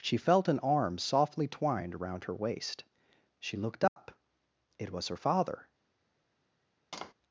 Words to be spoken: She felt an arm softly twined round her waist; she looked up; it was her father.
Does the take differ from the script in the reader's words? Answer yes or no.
yes